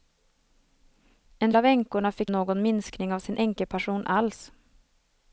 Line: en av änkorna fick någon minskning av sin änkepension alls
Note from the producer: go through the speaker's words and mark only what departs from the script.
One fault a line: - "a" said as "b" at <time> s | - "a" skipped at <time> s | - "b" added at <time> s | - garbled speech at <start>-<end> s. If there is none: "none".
none